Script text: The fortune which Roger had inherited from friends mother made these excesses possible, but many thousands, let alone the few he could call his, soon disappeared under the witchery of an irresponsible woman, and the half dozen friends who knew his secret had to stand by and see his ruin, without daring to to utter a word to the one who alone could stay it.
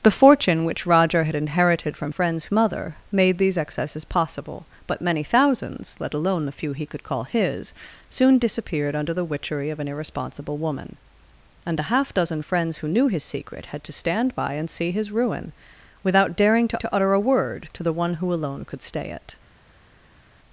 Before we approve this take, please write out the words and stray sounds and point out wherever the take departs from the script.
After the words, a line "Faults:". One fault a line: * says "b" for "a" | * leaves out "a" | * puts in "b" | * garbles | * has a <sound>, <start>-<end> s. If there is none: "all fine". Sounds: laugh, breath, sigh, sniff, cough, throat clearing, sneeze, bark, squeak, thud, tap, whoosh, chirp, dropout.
The fortune which Roger had inherited from friends mother made these excesses possible, but many thousands, let alone the few he could call his, soon disappeared under the witchery of an irresponsible woman, and the half dozen friends who knew his secret had to stand by and see his ruin, without daring to to utter a word to the one who alone could stay it.
Faults:
all fine